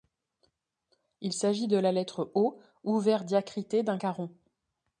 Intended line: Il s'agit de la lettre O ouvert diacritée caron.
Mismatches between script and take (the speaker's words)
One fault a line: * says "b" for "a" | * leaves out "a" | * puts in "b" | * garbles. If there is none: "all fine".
* puts in "d'un"